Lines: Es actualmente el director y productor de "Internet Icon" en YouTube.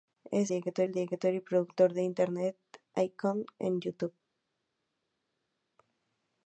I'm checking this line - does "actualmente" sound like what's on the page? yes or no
no